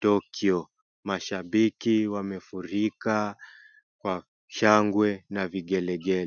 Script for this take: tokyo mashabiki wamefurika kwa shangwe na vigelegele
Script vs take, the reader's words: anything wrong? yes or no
no